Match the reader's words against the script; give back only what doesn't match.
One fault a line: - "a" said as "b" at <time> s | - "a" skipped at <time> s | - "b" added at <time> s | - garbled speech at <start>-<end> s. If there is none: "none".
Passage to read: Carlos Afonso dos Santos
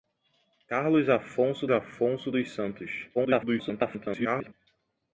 - "Afonso" added at 1.7 s
- garbled speech at 3.1-4.5 s